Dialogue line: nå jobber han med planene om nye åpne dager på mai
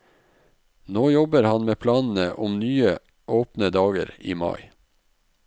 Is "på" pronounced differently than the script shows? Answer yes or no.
yes